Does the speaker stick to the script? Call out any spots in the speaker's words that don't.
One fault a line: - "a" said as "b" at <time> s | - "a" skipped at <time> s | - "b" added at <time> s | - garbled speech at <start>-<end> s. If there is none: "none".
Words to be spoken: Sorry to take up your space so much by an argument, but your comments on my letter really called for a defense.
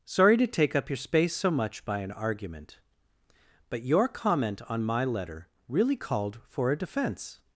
- "comments" said as "comment" at 4.1 s